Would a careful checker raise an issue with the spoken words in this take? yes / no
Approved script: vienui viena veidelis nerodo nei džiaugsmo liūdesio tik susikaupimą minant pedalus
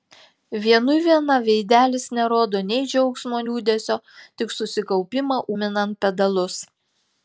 no